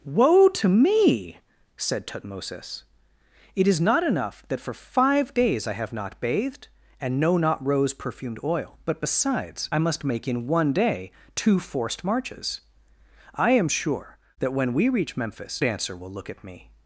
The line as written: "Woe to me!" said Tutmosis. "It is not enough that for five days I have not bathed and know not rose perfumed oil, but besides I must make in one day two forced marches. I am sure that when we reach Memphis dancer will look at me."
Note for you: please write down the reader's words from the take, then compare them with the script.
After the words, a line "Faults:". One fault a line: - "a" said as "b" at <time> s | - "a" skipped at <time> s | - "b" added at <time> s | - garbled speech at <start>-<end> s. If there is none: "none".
"Woe to me!" said Tutmosis. "It is not enough that for five days I have not bathed and know not rose perfumed oil, but besides I must make in one day two forced marches. I am sure that when we reach Memphis dancer will look at me."
Faults:
none